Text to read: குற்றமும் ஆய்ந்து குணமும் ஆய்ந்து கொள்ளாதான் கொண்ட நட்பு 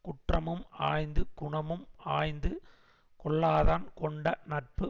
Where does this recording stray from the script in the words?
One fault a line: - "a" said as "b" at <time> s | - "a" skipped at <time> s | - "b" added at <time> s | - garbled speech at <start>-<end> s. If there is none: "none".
none